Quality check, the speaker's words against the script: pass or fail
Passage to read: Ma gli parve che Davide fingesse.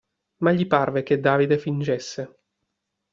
pass